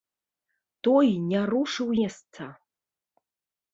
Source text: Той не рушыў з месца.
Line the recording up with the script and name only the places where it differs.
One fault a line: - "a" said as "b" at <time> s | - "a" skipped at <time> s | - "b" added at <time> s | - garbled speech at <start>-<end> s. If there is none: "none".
- "з" skipped at 1.9 s